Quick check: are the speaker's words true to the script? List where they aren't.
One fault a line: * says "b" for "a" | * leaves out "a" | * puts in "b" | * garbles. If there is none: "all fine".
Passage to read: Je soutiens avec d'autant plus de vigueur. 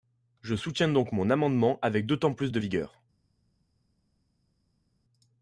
* puts in "donc mon amendement"